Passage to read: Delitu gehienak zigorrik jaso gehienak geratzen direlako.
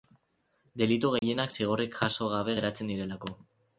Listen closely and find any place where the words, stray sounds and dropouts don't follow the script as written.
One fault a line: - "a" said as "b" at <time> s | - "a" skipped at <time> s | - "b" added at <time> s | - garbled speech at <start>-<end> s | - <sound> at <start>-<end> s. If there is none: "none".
- dropout at 1.2-1.2 s
- "gehienak" said as "gabe" at 2.3 s